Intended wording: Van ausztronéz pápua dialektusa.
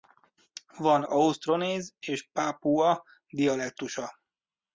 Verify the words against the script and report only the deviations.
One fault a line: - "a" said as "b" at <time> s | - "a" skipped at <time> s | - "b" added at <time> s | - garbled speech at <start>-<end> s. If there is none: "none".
- "és" added at 2.0 s